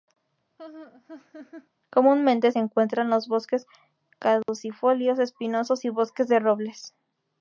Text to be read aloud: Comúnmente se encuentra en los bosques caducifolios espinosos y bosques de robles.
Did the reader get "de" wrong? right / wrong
right